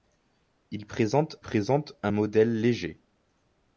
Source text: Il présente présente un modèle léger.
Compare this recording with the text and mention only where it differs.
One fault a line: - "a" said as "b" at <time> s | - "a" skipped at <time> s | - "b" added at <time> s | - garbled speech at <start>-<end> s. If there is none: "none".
none